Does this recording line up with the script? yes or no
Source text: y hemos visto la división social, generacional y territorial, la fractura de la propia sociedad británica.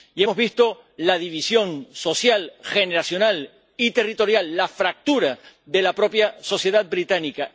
yes